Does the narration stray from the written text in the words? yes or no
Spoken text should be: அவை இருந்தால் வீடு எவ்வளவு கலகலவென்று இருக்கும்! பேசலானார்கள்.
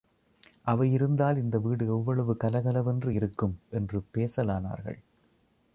yes